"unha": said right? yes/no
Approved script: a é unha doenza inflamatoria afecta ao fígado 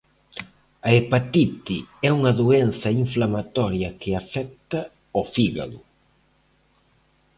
yes